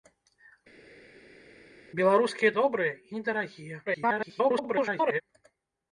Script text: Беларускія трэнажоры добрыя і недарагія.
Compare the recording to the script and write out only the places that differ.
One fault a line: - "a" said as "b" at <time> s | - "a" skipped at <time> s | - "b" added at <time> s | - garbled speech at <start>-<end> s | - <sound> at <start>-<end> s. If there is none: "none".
- "трэнажоры" skipped at 2.5 s
- garbled speech at 3.9-5.2 s